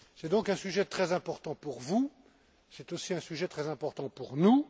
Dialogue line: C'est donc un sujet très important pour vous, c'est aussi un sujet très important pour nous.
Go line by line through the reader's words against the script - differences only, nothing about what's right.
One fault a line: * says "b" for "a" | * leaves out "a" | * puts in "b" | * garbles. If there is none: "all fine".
all fine